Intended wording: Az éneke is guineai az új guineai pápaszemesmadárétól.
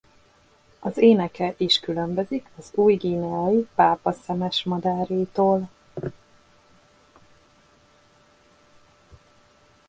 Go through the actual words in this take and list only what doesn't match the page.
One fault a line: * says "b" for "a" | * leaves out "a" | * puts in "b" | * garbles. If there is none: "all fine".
* says "különbözik" for "guineai"